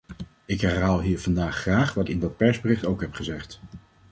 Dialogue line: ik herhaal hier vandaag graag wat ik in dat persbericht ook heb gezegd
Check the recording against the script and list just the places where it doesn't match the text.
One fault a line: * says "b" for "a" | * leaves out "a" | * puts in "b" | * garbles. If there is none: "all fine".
* leaves out "ik"